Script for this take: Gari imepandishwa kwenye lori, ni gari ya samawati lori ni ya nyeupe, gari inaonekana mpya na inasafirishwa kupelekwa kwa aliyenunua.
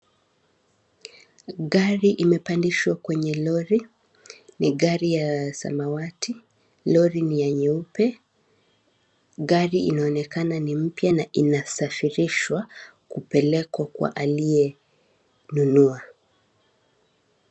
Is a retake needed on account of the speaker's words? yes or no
yes